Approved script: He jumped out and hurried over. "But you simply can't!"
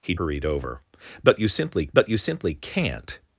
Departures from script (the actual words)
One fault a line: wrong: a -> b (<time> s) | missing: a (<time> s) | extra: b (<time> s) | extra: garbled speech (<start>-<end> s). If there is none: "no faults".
wrong: jumped out and hurried over -> hurried over But you simply (0.1 s)